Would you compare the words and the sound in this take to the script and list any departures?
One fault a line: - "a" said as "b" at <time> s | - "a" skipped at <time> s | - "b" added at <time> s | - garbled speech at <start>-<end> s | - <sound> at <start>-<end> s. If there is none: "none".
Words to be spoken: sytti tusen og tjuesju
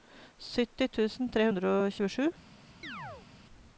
- "tre hundre" added at 1.4 s
- chirp at 2.8-3.3 s